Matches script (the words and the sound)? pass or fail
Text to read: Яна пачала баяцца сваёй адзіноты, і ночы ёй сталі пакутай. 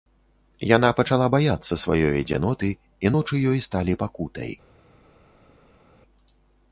pass